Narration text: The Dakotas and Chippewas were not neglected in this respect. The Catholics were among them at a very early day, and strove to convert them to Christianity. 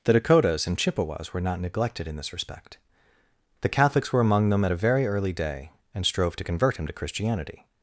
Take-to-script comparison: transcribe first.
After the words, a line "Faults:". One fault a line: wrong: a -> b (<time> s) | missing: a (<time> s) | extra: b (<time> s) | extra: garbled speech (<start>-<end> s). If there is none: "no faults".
The Dakotas and Chippewas were not neglected in this respect. The Catholics were among them at a very early day, and strove to convert him to Christianity.
Faults:
wrong: them -> him (6.8 s)